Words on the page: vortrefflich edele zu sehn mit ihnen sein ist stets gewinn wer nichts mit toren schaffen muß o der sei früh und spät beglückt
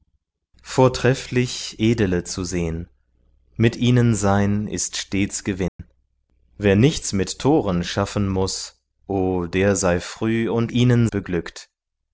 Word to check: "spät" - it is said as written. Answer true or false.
false